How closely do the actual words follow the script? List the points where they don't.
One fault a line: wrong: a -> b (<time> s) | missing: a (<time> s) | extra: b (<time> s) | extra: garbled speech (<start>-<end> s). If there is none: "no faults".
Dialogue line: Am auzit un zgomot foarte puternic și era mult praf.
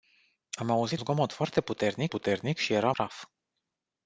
missing: un (1.0 s)
extra: puternic (2.1 s)
missing: mult (2.9 s)